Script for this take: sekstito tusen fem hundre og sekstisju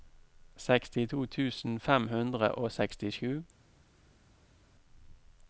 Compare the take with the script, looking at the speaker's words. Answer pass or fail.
pass